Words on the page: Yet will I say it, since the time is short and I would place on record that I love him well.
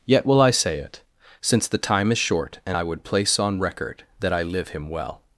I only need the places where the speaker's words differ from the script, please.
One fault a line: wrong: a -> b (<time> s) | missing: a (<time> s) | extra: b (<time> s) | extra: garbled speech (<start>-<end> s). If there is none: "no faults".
wrong: love -> live (4.4 s)